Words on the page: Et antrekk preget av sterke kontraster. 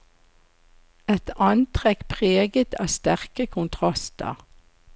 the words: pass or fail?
pass